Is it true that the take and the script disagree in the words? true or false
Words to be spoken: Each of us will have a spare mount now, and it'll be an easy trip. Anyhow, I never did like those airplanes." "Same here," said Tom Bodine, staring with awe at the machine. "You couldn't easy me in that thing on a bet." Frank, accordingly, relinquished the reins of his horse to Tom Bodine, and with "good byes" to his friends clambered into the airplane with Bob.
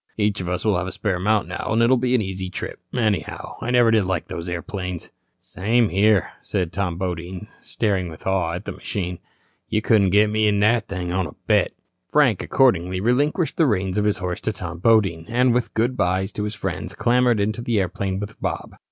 true